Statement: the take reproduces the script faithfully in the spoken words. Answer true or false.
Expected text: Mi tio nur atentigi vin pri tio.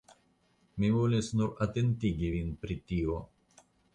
false